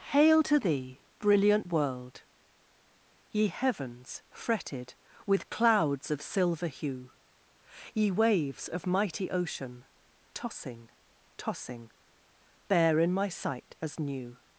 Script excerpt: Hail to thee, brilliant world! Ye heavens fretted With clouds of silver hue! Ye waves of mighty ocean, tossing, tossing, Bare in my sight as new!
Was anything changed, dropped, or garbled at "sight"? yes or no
no